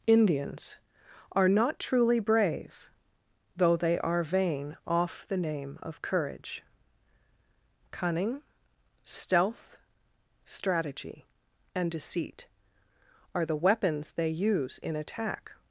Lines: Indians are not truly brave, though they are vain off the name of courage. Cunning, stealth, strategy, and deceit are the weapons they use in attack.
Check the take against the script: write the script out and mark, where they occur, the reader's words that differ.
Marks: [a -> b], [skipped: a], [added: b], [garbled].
Indians are not truly brave, though they are vain off the name of courage. Cunning, stealth, strategy, and deceit are the weapons they use in attack.